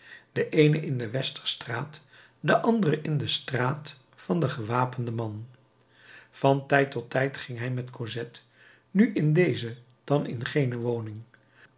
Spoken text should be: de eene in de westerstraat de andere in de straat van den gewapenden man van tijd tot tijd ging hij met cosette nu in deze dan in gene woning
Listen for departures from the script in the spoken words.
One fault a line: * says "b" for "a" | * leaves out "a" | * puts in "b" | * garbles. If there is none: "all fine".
all fine